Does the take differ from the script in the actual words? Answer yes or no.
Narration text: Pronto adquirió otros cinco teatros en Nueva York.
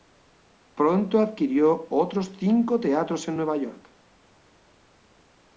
no